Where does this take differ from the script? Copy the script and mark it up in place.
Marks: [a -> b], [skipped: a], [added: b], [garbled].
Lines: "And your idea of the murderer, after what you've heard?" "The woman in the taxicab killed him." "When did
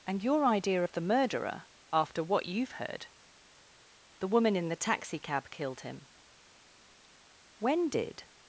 "And your idea of the murderer, after what you've heard?" "The woman in the taxicab killed him." "When did